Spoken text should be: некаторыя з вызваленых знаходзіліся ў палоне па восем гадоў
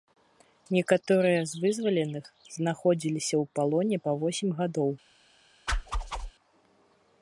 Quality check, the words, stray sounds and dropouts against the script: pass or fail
fail